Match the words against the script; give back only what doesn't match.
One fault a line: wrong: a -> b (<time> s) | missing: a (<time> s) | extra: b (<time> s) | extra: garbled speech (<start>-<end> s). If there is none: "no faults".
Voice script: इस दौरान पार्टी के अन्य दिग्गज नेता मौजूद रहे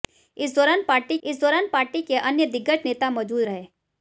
extra: इस दौरान पार्टी (1.2 s)